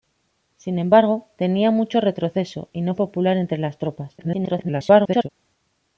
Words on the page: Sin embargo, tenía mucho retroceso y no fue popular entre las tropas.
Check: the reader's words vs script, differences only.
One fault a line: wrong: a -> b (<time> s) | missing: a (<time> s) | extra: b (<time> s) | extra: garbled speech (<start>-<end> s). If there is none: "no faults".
missing: fue (3.0 s)
extra: garbled speech (4.2-5.3 s)